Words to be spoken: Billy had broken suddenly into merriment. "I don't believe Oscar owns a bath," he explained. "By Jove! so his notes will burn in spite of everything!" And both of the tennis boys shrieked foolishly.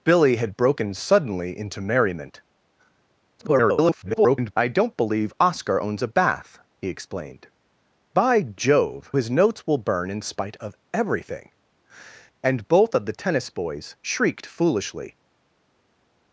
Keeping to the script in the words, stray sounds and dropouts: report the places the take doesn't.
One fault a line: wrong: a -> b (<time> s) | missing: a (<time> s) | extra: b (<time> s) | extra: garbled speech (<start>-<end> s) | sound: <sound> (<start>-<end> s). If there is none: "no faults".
extra: garbled speech (3.4-4.5 s)
missing: so (9.1 s)